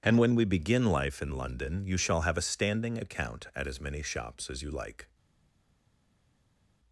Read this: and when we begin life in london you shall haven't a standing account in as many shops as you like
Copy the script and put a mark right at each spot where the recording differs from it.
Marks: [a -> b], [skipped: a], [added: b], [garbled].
and when we begin life in london you shall [haven't -> have] a standing account [in -> at] as many shops as you like